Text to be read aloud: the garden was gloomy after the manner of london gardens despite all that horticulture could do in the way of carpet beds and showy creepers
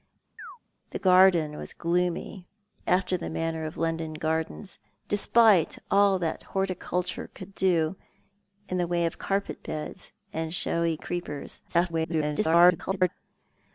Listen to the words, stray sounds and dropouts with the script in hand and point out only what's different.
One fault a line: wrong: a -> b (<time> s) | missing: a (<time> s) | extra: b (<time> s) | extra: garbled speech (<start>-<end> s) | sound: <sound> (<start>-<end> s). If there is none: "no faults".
sound: chirp (0.4-0.6 s)
extra: garbled speech (11.7-13.1 s)